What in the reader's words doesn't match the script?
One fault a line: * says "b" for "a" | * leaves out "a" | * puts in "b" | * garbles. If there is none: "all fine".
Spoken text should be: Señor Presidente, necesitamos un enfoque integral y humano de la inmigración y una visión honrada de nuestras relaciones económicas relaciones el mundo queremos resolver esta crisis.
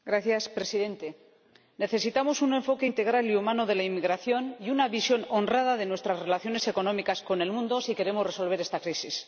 * says "con" for "relaciones"
* puts in "si"